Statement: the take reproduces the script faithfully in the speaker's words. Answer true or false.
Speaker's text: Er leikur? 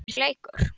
true